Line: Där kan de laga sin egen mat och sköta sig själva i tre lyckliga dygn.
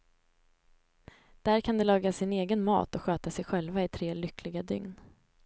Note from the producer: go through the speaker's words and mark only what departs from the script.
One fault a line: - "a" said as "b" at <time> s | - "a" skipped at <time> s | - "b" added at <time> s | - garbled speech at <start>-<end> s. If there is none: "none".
none